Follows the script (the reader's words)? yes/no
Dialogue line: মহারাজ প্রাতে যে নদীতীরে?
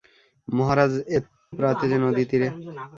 yes